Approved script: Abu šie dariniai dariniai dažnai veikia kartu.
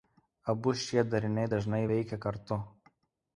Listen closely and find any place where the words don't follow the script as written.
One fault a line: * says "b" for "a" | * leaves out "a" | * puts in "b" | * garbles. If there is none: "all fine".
* leaves out "dariniai"